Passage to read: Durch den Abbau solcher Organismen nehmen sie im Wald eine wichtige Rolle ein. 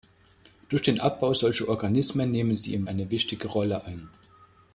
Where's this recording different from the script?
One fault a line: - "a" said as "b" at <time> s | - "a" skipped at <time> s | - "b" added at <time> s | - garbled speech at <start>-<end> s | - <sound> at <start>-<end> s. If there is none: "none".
- "Wald" skipped at 2.9 s